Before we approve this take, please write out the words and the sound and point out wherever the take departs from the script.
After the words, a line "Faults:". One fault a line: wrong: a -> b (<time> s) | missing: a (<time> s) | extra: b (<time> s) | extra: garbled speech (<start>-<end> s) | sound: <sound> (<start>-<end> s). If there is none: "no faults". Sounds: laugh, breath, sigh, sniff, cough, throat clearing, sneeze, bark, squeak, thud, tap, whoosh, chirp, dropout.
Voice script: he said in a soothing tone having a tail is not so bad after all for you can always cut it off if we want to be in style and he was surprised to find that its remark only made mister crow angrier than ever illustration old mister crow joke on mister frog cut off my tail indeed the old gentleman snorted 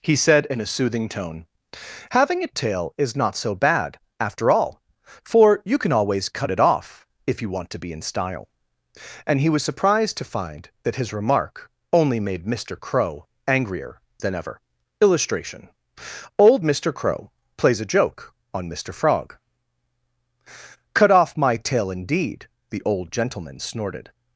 he said in a soothing tone having a tail is not so bad after all for you can always cut it off if you want to be in style and he was surprised to find that his remark only made mister crow angrier than ever illustration old mister crow plays a joke on mister frog cut off my tail indeed the old gentleman snorted
Faults:
wrong: we -> you (7.4 s)
wrong: its -> his (10.9 s)
extra: plays a (17.6 s)